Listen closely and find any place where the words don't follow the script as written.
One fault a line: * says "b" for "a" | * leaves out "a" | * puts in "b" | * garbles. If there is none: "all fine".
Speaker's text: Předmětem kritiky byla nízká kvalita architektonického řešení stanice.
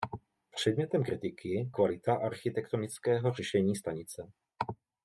* leaves out "byla nízká"